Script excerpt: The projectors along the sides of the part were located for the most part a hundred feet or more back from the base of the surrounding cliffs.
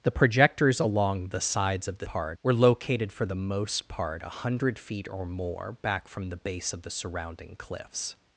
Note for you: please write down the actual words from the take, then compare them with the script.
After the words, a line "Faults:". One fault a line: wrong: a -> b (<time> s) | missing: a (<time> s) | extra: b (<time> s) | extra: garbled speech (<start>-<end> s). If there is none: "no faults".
The projectors along the sides of the part were located for the most part a hundred feet or more back from the base of the surrounding cliffs.
Faults:
no faults